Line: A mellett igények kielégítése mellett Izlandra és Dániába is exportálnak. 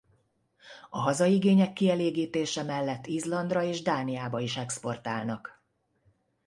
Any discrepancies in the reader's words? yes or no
yes